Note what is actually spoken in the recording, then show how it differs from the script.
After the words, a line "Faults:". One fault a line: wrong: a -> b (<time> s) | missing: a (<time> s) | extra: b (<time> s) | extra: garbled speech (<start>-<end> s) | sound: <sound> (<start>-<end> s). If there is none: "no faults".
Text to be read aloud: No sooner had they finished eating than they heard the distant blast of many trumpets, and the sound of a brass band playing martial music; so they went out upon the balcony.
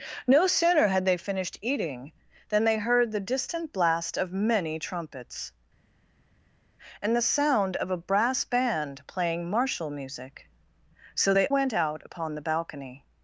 No sooner had they finished eating than they heard the distant blast of many trumpets, and the sound of a brass band playing martial music; so they went out upon the balcony.
Faults:
no faults